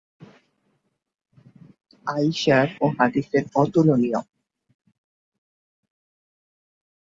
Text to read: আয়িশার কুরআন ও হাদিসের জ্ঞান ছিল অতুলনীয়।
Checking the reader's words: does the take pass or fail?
fail